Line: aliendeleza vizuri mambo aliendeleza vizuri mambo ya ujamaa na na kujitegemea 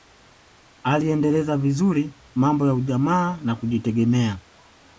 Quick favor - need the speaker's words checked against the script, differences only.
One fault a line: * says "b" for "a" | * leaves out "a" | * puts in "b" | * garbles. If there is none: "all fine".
* leaves out "aliendeleza vizuri mambo"
* leaves out "na"